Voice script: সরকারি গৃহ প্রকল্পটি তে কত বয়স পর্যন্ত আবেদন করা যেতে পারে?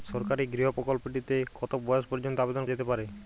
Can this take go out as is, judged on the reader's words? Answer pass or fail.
fail